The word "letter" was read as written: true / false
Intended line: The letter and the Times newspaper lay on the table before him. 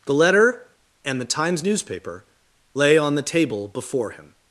true